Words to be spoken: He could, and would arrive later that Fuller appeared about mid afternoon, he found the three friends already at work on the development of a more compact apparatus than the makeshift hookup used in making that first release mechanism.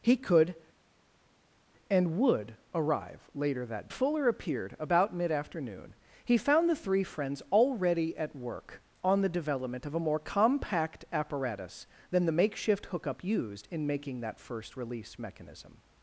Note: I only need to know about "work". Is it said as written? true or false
true